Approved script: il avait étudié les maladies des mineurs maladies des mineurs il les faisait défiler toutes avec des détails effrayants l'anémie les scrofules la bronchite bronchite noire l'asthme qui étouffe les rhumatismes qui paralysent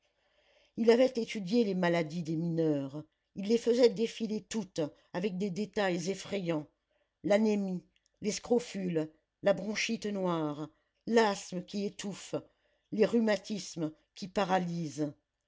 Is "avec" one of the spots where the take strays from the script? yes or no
no